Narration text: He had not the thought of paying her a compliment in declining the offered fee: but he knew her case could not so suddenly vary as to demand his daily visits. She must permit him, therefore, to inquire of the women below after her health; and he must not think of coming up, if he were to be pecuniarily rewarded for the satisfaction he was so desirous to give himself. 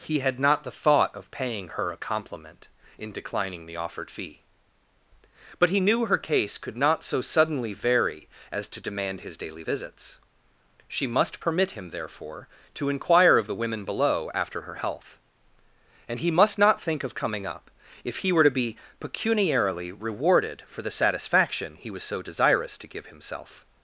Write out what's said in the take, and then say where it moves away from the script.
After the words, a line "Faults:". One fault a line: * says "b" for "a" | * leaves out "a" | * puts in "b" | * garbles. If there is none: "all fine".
He had not the thought of paying her a compliment in declining the offered fee: but he knew her case could not so suddenly vary as to demand his daily visits. She must permit him, therefore, to inquire of the women below after her health; and he must not think of coming up, if he were to be pecuniarily rewarded for the satisfaction he was so desirous to give himself.
Faults:
all fine